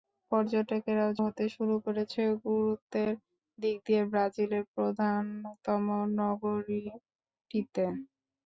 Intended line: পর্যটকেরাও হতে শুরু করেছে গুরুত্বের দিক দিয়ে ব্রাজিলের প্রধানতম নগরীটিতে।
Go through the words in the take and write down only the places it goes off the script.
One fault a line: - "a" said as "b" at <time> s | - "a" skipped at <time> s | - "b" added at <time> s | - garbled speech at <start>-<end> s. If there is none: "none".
none